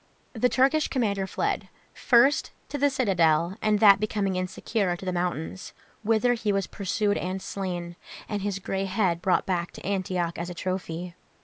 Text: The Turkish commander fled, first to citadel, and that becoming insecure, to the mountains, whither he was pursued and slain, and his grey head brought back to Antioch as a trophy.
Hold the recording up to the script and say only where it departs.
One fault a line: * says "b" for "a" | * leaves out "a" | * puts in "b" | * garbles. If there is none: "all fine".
* puts in "the"